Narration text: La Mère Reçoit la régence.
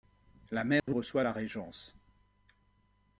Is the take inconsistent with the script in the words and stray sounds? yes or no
yes